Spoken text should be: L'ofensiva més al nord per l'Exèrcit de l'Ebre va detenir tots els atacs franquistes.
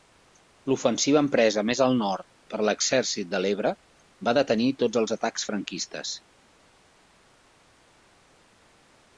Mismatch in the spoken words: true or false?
true